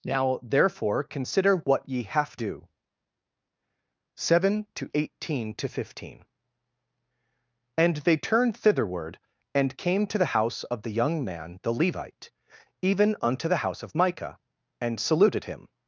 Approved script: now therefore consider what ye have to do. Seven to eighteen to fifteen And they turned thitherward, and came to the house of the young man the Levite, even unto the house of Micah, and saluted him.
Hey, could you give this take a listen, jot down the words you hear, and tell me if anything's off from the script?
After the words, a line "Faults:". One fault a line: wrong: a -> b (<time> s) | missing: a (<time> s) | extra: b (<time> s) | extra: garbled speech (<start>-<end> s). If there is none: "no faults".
now therefore consider what ye have do. Seven to eighteen to fifteen And they turned thitherward, and came to the house of the young man the Levite, even unto the house of Micah, and saluted him.
Faults:
missing: to (2.4 s)